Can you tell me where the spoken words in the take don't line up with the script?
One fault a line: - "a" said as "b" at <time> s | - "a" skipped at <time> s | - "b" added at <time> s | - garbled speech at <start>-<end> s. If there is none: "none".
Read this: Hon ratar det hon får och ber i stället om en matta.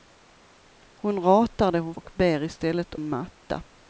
- "får" skipped at 1.9 s
- "om" skipped at 2.9 s